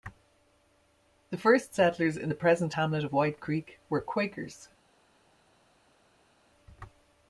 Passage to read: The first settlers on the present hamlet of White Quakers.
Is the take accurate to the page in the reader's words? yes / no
no